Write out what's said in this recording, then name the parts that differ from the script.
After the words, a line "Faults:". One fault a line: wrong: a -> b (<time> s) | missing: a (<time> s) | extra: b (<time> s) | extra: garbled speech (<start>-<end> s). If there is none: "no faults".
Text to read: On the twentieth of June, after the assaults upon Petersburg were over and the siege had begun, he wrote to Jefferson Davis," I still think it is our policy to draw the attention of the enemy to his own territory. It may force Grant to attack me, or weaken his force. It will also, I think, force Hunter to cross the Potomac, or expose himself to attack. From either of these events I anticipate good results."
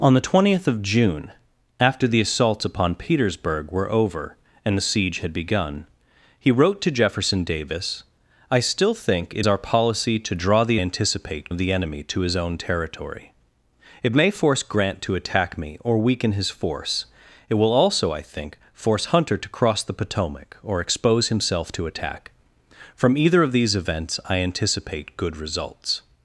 On the twentieth of June, after the assaults upon Petersburg were over and the siege had begun, he wrote to Jefferson Davis," I still think it our policy to draw the anticipate of the enemy to his own territory. It may force Grant to attack me, or weaken his force. It will also, I think, force Hunter to cross the Potomac, or expose himself to attack. From either of these events I anticipate good results."
Faults:
missing: is (9.4 s)
wrong: attention -> anticipate (10.8 s)